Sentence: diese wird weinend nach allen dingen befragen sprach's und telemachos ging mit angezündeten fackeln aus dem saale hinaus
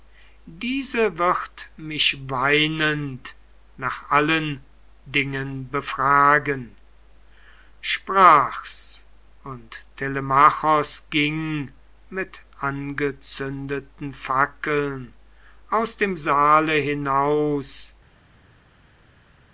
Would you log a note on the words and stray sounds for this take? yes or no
yes